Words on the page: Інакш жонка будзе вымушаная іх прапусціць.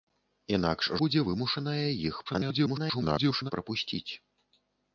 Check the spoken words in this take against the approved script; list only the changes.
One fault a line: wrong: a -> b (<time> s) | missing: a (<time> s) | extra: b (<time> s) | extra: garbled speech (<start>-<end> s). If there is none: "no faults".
missing: жонка (0.9 s)
extra: garbled speech (2.3-3.5 s)